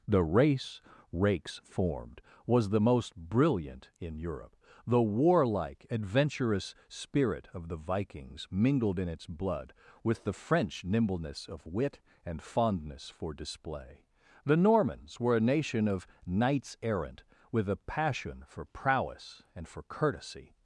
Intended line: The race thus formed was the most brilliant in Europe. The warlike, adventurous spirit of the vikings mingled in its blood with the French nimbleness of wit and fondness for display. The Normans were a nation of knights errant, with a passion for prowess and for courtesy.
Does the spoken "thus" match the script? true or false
false